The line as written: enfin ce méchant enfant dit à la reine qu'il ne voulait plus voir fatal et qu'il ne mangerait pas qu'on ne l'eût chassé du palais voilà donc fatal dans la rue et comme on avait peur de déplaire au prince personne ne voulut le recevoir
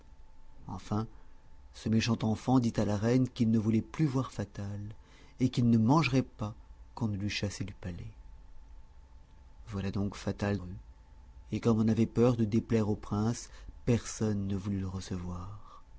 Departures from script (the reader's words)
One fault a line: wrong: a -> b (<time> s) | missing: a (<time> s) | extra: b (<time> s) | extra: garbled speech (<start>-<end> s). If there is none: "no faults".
missing: dans la (10.6 s)